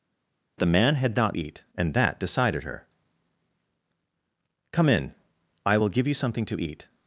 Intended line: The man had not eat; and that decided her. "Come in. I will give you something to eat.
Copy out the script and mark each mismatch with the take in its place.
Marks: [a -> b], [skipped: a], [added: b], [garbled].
The man had not eat; and that decided her. "Come in. I will give you something to eat.